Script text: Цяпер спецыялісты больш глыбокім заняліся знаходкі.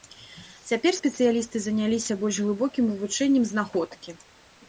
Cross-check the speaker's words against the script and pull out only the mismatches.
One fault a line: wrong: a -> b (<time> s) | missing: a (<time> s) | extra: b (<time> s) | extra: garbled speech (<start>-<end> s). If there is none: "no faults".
extra: заняліся (1.6 s)
wrong: заняліся -> вывучэннем (2.9 s)